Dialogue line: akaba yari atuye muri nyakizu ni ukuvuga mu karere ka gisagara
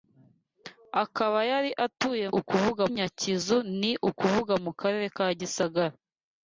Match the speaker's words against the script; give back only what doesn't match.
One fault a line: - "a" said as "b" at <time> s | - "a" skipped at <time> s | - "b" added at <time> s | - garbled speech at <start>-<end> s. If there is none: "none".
- "muri" said as "ukuvuga" at 2.4 s